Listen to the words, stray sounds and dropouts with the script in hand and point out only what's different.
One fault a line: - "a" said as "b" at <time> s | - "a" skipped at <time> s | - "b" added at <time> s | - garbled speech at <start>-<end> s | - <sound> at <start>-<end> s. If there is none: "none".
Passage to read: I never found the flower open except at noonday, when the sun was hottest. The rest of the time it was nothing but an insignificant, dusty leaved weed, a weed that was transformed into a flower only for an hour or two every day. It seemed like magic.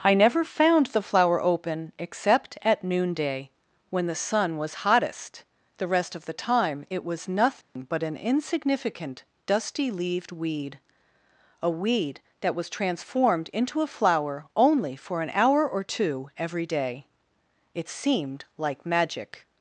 - dropout at 7.6-7.8 s